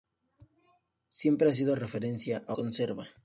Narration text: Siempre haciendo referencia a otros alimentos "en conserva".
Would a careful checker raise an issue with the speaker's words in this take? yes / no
yes